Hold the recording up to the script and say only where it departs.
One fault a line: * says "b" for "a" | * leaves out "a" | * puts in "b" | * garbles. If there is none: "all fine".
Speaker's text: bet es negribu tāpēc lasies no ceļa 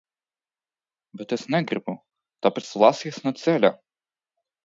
all fine